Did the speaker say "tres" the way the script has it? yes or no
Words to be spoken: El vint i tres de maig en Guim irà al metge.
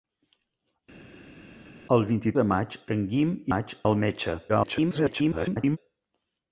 no